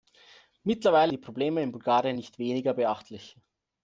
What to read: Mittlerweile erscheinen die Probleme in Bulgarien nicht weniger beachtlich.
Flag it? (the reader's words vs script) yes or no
yes